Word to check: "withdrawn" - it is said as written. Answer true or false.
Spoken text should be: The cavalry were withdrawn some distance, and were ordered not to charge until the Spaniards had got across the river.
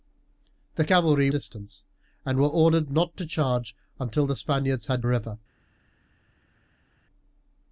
false